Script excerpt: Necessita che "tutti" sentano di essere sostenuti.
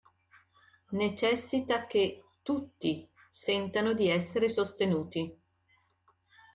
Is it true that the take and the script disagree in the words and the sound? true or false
false